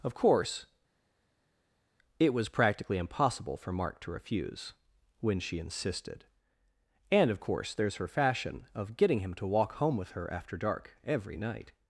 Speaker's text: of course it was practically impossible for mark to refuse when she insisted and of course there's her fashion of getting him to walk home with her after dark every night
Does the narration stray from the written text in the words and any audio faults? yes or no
no